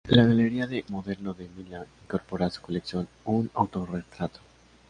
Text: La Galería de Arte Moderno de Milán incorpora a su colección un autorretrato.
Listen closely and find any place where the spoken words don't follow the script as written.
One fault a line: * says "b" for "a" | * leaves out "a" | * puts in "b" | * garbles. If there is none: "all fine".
* leaves out "Arte"